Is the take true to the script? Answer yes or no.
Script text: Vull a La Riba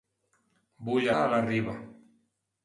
yes